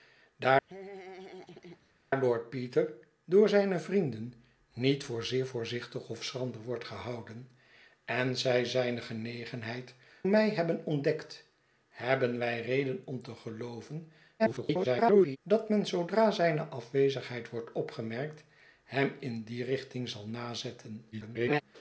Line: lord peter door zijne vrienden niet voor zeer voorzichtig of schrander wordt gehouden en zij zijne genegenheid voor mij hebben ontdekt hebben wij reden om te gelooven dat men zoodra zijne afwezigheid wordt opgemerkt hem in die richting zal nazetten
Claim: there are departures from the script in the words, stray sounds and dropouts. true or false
true